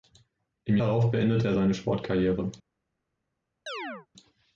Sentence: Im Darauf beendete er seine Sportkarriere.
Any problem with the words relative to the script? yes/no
no